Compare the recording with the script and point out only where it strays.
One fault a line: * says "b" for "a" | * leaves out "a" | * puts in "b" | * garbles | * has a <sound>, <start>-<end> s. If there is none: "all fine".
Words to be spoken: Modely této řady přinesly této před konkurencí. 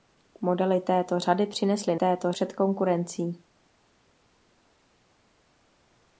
all fine